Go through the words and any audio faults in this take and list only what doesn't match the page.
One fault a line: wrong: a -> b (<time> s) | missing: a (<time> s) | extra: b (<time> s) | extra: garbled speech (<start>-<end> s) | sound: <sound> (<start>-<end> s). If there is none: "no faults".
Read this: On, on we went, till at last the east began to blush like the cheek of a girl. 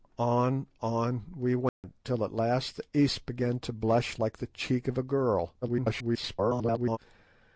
sound: dropout (1.7-1.8 s)
extra: garbled speech (5.6-7.0 s)